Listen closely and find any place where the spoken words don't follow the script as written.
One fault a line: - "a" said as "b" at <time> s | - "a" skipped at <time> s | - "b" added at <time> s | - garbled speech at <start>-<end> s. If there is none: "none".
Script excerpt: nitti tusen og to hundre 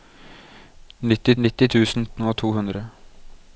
- "nitti" added at 1.4 s